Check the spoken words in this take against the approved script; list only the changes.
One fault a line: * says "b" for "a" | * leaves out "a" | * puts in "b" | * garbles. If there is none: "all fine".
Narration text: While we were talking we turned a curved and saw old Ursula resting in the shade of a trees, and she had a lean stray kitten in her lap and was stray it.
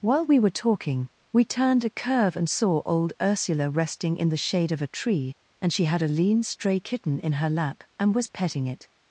* says "curve" for "curved"
* says "tree" for "trees"
* says "petting" for "stray"